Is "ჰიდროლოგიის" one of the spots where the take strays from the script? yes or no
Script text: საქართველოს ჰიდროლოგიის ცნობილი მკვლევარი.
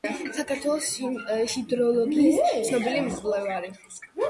no